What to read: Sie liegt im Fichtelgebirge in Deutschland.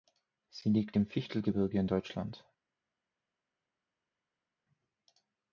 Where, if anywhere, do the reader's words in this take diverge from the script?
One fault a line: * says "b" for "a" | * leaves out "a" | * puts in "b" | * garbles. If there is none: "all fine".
all fine